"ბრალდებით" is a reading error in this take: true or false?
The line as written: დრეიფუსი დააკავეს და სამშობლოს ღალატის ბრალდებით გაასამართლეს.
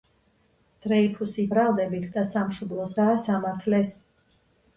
true